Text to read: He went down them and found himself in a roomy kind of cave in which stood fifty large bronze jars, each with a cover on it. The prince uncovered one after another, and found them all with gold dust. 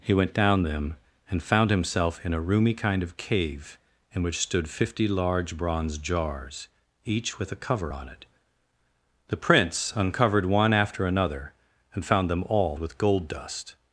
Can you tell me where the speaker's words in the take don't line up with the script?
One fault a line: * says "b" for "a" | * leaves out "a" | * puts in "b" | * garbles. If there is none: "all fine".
all fine